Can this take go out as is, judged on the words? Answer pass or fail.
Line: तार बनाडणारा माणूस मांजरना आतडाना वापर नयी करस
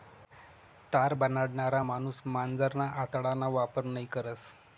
pass